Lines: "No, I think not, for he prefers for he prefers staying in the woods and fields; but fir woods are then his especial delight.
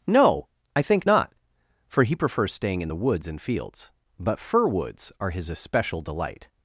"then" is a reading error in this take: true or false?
true